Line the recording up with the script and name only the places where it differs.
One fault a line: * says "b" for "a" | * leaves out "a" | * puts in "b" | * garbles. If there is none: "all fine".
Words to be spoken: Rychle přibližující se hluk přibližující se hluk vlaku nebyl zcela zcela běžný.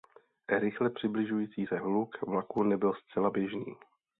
* leaves out "přibližující se hluk"
* leaves out "zcela"